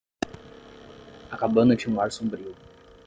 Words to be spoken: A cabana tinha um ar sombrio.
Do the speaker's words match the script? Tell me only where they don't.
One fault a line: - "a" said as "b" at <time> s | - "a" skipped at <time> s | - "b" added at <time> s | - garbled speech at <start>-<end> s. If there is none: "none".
none